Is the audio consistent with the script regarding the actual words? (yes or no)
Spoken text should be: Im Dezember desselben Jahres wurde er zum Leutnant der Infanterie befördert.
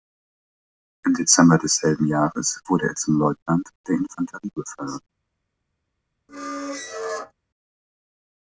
yes